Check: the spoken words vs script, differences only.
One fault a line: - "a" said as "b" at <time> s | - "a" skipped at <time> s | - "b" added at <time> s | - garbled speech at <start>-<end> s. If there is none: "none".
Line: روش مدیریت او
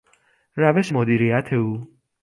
none